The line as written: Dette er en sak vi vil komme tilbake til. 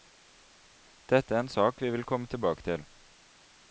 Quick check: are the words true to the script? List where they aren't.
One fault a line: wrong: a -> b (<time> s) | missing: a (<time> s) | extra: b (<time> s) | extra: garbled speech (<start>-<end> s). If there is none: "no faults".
no faults